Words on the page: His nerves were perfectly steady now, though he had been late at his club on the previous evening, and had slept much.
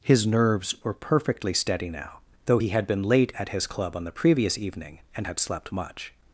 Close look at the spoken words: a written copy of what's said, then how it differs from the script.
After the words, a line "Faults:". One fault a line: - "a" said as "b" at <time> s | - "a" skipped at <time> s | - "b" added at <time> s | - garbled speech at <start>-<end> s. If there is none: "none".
His nerves were perfectly steady now, though he had been late at his club on the previous evening, and had slept much.
Faults:
none